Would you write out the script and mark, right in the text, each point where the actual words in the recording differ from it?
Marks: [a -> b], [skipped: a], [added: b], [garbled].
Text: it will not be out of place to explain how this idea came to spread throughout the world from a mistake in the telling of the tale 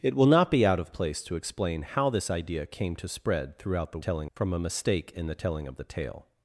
it will not be out of place to explain how this idea came to spread throughout the [world -> telling] from a mistake in the telling of the tale